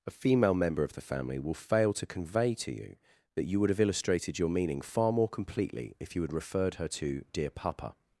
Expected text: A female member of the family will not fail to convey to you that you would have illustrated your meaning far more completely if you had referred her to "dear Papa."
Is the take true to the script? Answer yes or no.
no